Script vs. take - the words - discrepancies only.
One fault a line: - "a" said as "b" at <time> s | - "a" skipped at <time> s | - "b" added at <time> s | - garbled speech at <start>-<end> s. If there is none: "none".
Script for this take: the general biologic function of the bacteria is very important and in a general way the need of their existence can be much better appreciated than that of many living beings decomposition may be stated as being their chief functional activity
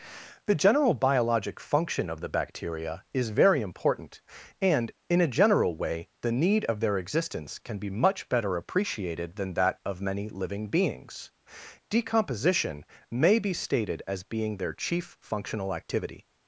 none